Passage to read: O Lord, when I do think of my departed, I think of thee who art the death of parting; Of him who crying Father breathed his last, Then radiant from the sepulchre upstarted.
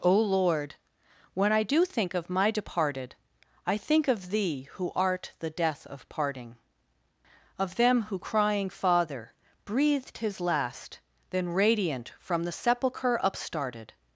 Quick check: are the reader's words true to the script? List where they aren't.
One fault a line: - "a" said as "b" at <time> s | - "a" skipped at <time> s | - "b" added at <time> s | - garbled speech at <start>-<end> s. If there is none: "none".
- "him" said as "them" at 7.8 s